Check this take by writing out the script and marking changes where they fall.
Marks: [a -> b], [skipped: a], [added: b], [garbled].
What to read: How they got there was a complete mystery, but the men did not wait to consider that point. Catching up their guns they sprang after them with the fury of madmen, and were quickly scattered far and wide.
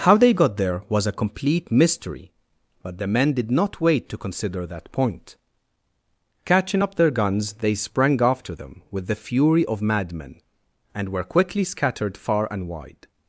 How they got there was a complete mystery, but the men did not wait to consider that point. Catching up their guns they sprang after them with the fury of madmen, and were quickly scattered far and wide.